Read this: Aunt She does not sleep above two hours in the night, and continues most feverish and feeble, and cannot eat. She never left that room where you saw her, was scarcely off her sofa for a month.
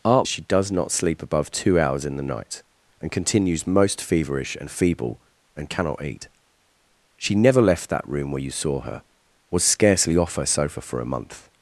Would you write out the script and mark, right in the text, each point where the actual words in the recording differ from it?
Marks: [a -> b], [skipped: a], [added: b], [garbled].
Aunt She does not sleep above two hours in the night, and continues most feverish and feeble, and cannot eat. She never left that room where you saw her, was scarcely off her sofa for a month.